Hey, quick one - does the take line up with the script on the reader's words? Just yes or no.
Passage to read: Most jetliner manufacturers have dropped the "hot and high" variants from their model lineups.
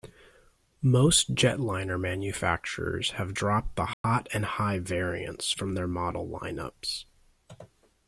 yes